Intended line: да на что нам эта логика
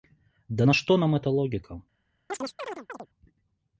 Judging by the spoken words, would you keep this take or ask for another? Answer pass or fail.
pass